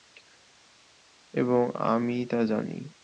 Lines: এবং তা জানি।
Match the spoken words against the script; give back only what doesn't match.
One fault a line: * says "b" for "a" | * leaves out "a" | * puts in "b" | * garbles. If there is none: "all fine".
* puts in "আমি"